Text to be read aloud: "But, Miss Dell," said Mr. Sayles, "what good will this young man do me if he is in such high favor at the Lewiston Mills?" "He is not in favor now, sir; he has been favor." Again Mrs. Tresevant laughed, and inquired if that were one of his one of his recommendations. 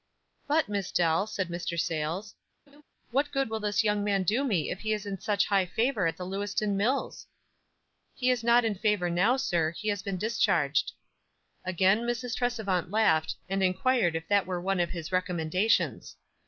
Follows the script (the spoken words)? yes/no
no